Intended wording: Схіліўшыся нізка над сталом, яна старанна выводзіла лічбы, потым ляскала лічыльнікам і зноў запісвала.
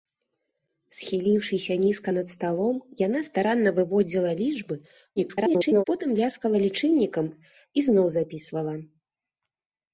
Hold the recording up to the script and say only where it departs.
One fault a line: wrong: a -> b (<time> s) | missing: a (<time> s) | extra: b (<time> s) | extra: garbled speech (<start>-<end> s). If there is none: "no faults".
extra: garbled speech (5.2-5.8 s)